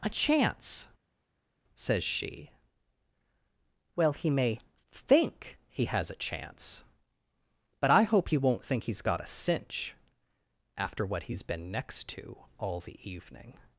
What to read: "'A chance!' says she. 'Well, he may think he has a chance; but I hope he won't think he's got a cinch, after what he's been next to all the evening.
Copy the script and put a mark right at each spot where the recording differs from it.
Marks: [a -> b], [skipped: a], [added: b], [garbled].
"'A chance!' says she. 'Well, he may think he has a chance; but I hope he won't think he's got a cinch, after what he's been next to all the evening.